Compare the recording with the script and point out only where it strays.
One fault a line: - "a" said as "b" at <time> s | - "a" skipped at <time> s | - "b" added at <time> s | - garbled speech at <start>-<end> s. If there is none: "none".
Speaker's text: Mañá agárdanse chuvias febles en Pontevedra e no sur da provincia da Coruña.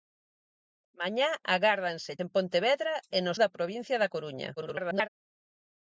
- "chuvias febles" skipped at 2.1 s
- "sur" skipped at 3.3 s
- garbled speech at 4.6-5.1 s